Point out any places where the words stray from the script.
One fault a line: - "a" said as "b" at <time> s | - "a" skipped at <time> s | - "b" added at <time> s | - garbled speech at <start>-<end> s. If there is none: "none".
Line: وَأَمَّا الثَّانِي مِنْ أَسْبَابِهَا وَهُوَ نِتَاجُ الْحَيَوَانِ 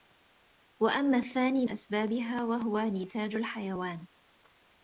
- "مِنْ" skipped at 1.7 s